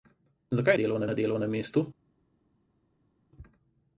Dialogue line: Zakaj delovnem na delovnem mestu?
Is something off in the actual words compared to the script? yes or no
no